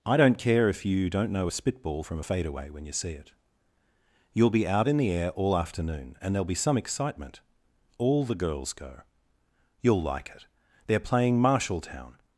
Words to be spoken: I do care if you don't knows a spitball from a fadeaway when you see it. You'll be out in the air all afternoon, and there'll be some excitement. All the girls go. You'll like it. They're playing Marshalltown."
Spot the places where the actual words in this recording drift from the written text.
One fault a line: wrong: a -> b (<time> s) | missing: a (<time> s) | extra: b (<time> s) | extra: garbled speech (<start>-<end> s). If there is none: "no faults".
wrong: do -> don't (0.2 s)
wrong: knows -> know (1.3 s)